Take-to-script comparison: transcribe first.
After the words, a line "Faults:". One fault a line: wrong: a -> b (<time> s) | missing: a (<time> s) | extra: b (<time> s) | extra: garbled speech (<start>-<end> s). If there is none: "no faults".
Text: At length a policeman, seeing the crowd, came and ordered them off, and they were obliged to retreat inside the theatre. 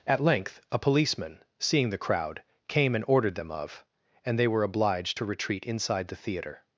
At length a policeman, seeing the crowd, came and ordered them of, and they were obliged to retreat inside the theatre.
Faults:
wrong: off -> of (3.5 s)